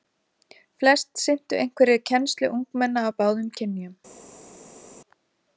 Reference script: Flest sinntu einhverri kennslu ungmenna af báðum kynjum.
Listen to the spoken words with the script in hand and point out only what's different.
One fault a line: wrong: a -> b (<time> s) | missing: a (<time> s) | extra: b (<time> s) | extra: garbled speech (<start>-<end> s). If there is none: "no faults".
no faults